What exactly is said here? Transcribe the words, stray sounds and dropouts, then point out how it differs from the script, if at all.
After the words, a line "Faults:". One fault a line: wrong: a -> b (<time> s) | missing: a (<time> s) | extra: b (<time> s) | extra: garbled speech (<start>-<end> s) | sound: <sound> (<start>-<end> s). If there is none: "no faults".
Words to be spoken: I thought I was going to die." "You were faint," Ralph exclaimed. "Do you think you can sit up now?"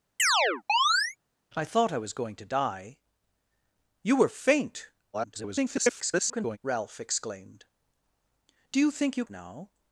I thought I was going to die." "You were faint," [garbled] Ralph exclaimed. "Do you think you now?"
Faults:
sound: chirp (0.2-1.2 s)
extra: garbled speech (5.1-6.6 s)
missing: can sit up (9.2 s)